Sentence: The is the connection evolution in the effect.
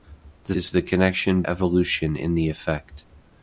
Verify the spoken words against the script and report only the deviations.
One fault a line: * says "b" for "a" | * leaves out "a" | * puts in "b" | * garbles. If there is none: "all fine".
all fine